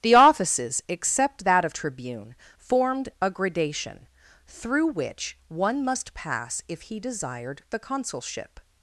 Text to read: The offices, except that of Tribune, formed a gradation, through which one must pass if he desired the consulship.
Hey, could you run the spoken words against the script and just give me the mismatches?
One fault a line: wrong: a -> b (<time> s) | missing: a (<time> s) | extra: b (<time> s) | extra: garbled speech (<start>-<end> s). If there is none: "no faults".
no faults